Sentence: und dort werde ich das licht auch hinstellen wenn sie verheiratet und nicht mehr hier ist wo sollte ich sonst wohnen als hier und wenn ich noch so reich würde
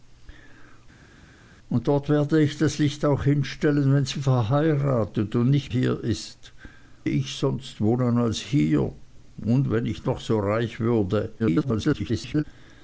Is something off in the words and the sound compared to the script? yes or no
yes